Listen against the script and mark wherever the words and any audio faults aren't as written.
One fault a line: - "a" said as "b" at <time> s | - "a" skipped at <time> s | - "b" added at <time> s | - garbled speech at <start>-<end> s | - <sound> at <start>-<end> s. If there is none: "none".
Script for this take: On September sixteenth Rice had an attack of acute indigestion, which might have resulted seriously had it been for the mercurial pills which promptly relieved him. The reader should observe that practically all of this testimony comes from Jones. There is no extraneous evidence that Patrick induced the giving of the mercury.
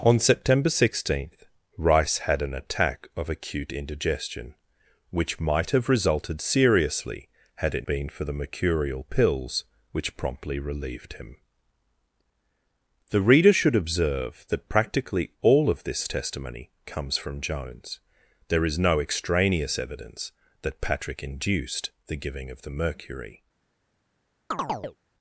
- chirp at 24.5-25.0 s